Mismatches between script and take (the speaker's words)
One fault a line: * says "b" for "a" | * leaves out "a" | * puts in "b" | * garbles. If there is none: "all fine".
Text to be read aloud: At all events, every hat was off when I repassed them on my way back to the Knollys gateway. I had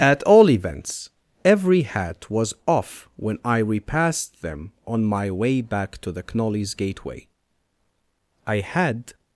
all fine